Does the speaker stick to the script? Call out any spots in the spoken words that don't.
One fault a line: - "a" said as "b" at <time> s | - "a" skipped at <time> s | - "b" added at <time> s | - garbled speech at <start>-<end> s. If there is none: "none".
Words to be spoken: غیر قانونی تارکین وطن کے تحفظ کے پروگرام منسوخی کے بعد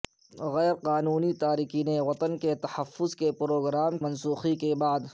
none